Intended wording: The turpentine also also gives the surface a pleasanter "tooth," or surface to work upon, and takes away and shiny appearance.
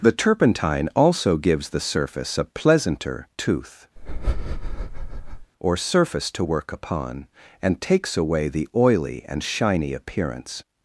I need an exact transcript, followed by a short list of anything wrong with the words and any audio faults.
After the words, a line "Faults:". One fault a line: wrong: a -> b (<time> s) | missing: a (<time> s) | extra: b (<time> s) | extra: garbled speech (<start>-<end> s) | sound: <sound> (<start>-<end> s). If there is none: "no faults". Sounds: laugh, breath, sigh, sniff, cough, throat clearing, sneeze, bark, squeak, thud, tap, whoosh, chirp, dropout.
The turpentine also gives the surface a pleasanter "tooth," or surface to work upon, and takes away the oily and shiny appearance.
Faults:
missing: also (1.4 s)
sound: breath (4.0-5.5 s)
extra: the oily (8.5 s)